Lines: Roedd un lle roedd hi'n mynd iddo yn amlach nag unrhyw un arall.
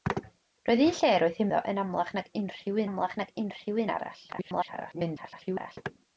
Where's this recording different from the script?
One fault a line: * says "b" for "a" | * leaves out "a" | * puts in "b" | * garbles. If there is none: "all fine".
* leaves out "mynd"
* puts in "amlach nag unrhyw"
* garbles